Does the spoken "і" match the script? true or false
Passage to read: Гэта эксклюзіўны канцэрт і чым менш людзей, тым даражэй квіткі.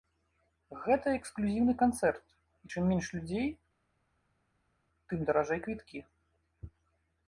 true